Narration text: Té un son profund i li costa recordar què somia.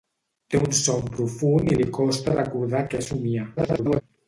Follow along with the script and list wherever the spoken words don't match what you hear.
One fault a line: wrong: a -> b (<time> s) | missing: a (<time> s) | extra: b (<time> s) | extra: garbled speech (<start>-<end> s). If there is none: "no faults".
extra: garbled speech (3.6-4.0 s)